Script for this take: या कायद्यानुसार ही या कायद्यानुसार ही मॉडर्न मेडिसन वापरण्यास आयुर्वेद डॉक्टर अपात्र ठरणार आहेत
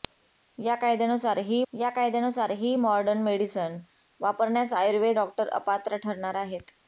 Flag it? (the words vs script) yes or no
no